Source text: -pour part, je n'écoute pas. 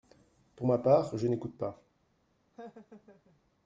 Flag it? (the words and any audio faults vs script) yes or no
yes